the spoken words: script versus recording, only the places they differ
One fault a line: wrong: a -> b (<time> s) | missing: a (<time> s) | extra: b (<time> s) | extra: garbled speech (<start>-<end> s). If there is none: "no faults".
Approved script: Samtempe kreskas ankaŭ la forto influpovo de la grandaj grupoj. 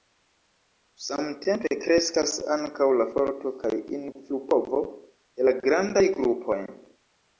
extra: kaj (3.6 s)